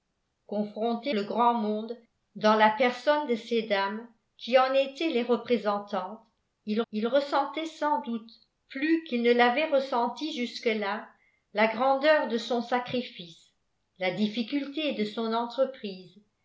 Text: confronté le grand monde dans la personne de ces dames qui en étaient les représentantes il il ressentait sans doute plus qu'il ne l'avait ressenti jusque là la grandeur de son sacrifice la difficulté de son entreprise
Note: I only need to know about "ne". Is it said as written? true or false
true